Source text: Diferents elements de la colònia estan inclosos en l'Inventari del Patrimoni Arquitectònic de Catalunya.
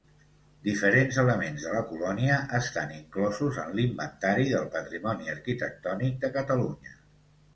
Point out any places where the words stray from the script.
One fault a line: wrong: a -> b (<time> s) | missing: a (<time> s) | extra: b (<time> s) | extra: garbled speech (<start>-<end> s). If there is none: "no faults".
no faults